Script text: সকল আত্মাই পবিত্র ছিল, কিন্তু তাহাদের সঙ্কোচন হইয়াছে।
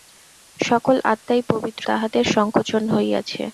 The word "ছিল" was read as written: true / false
false